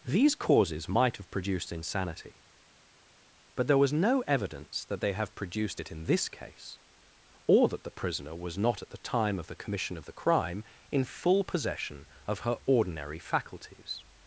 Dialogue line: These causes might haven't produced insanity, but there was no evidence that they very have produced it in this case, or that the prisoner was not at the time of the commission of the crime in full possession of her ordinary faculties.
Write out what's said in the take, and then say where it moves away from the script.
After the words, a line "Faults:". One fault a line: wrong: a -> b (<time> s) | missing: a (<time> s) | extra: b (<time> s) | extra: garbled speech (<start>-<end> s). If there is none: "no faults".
These causes might have produced insanity, but there was no evidence that they have produced it in this case, or that the prisoner was not at the time of the commission of the crime in full possession of her ordinary faculties.
Faults:
wrong: haven't -> have (1.2 s)
missing: very (5.1 s)